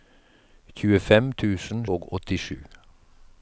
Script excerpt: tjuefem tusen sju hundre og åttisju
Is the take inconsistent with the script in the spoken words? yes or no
yes